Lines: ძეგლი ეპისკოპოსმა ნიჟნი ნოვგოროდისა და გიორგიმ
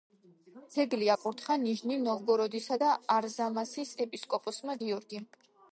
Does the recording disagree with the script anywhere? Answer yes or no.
yes